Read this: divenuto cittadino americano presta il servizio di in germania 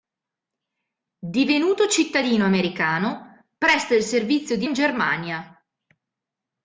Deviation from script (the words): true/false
false